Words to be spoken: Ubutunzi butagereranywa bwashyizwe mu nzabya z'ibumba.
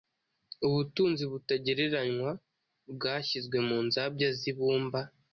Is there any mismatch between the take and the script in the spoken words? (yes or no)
no